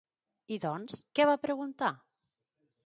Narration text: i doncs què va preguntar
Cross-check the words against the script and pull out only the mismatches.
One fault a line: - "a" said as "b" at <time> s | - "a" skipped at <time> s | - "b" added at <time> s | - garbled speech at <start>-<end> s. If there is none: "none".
none